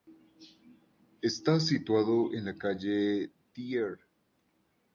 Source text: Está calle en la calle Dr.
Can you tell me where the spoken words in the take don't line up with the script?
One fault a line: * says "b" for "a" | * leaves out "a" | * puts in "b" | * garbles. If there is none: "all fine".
* says "situado" for "calle"